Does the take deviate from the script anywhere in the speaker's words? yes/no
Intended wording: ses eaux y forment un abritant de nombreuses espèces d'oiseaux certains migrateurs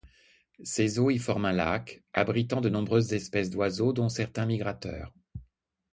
yes